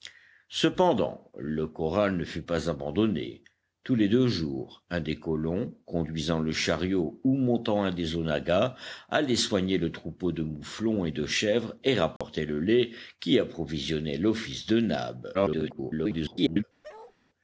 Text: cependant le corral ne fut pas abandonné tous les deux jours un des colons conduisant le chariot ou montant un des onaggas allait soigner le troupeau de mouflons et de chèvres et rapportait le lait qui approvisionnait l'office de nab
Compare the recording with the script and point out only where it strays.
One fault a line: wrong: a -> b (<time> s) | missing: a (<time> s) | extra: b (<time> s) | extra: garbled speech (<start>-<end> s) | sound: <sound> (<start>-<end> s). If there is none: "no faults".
sound: dropout (12.2-12.2 s)
extra: garbled speech (15.3-16.6 s)
sound: bark (16.8-17.2 s)